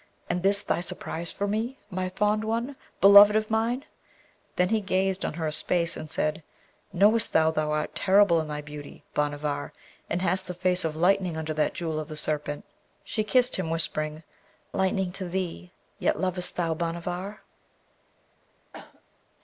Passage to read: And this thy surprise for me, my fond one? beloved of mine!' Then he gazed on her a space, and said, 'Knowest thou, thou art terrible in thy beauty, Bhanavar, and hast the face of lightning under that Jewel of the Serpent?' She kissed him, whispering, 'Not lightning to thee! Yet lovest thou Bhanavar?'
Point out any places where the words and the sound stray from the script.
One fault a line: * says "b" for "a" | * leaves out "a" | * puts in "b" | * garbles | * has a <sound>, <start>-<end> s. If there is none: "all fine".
* leaves out "Not"
* has a cough, 18.7-19.0 s